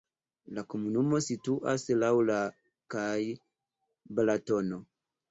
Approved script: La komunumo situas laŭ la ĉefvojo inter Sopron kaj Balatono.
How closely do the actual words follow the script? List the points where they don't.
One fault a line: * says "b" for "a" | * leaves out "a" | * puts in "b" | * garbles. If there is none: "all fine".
* leaves out "ĉefvojo inter Sopron"